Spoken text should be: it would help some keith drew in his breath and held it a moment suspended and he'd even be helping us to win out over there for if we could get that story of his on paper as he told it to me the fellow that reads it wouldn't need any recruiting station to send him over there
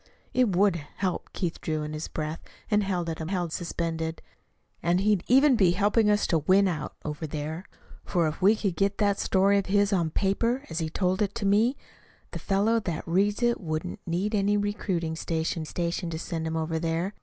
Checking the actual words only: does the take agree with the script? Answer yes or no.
no